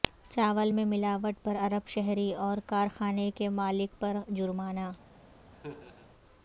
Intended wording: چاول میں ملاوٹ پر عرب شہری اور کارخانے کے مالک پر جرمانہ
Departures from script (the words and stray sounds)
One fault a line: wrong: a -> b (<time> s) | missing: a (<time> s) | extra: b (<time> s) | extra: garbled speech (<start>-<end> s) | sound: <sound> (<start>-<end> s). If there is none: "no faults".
sound: laugh (5.5-6.1 s)